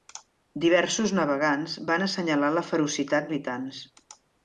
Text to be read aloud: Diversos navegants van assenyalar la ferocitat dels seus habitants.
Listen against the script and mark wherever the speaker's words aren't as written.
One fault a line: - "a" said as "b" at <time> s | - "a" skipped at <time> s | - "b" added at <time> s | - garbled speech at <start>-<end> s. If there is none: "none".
- "dels seus" skipped at 3.3 s